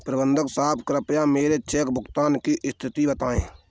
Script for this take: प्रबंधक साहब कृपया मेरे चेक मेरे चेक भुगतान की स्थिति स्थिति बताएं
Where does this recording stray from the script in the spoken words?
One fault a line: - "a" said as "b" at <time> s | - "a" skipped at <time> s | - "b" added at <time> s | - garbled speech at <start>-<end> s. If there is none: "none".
- "मेरे चेक" skipped at 1.9 s
- "स्थिति" skipped at 3.1 s